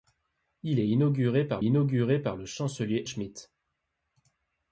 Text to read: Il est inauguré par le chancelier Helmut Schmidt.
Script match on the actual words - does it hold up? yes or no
no